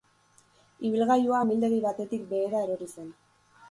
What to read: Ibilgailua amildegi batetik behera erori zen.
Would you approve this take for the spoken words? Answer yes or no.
yes